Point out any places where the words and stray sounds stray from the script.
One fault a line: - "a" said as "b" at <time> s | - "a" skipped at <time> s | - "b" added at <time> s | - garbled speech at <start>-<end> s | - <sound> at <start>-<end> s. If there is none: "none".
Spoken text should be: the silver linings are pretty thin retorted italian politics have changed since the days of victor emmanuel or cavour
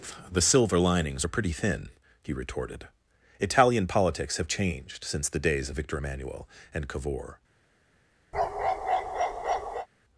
- "he" added at 2.2 s
- "or" said as "and" at 6.7 s
- bark at 8.3-9.9 s